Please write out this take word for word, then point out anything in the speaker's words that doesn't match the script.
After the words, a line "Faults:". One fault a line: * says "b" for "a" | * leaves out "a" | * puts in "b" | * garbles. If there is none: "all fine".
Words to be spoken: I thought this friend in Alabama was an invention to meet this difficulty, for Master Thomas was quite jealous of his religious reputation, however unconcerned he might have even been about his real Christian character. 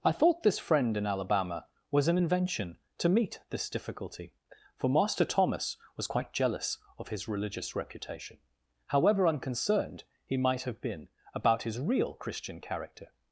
I thought this friend in Alabama was an invention to meet this difficulty, for Master Thomas was quite jealous of his religious reputation, however unconcerned he might have been about his real Christian character.
Faults:
* leaves out "even"